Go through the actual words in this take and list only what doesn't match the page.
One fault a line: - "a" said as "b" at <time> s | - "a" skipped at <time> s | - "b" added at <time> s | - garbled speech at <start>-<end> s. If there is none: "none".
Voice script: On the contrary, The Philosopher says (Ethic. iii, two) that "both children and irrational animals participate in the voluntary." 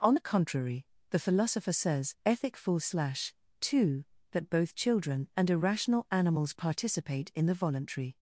- "iii" said as "full slash" at 2.5 s